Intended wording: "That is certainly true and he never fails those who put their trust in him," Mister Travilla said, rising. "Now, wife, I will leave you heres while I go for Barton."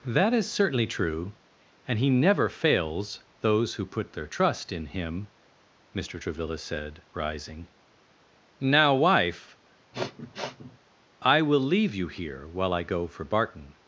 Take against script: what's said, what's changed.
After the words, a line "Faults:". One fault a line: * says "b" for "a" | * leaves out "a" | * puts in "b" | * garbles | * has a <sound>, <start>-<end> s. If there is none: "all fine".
"That is certainly true and he never fails those who put their trust in him," Mister Travilla said, rising. "Now, wife, I will leave you here while I go for Barton."
Faults:
* has a sniff, 9.9-10.8 s
* says "here" for "heres"